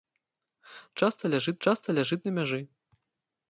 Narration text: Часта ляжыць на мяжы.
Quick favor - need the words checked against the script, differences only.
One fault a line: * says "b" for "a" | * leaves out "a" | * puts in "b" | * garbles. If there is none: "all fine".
* puts in "часта ляжыць"